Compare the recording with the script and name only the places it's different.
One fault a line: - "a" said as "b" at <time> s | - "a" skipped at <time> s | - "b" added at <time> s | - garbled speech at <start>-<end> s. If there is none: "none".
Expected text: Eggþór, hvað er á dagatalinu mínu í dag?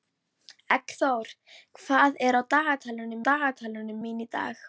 - "dagatalinu" added at 3.3 s